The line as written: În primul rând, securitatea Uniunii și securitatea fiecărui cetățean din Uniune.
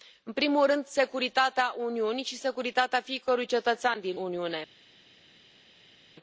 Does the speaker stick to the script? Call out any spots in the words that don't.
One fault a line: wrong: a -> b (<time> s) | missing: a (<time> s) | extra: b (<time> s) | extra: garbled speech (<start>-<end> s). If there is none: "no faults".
no faults